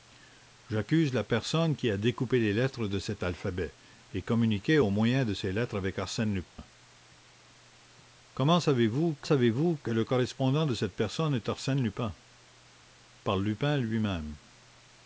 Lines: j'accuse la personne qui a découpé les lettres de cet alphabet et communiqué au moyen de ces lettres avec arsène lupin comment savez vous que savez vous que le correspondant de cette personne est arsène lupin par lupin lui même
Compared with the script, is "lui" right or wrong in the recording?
right